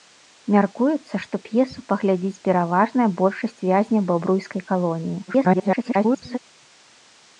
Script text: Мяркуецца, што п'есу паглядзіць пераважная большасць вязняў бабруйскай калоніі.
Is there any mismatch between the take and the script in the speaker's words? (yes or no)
yes